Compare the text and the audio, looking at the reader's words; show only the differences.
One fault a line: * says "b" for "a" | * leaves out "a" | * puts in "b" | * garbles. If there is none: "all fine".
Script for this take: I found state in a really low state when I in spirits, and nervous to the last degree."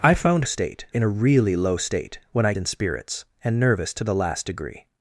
all fine